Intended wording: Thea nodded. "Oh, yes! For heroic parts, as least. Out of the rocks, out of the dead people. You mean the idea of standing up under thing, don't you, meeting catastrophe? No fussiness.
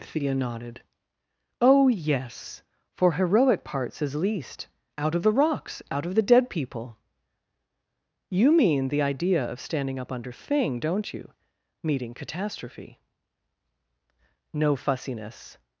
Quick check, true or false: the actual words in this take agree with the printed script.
true